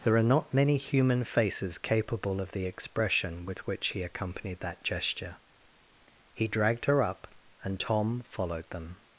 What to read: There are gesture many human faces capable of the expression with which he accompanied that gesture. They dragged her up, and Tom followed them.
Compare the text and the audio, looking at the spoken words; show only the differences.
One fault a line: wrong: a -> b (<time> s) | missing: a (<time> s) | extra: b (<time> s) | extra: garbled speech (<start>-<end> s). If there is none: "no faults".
wrong: gesture -> not (0.2 s)
wrong: They -> He (6.3 s)